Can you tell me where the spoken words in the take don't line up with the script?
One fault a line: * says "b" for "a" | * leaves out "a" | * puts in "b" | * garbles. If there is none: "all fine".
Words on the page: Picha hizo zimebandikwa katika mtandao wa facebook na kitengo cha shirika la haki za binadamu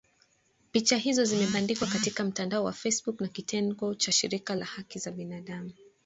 all fine